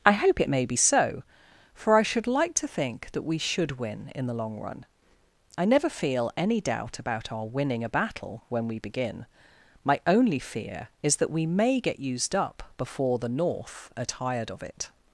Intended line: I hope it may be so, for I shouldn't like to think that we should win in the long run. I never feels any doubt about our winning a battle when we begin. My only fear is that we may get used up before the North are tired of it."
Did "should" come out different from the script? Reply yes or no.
no